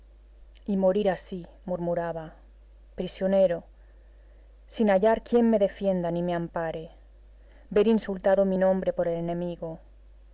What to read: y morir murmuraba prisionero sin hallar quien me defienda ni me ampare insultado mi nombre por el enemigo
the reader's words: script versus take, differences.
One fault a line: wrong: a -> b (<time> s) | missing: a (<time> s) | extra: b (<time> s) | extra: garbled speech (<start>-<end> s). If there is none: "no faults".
extra: así (1.1 s)
extra: ver (7.7 s)